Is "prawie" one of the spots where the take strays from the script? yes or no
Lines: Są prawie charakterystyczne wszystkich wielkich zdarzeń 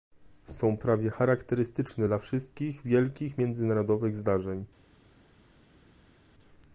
no